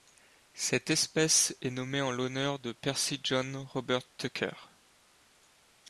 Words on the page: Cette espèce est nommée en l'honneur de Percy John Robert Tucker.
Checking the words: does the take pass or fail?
pass